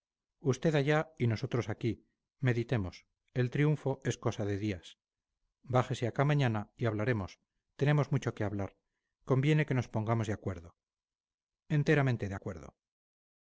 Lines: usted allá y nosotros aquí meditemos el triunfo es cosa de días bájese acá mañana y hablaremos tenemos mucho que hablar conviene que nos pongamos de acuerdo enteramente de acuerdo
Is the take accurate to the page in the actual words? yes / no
yes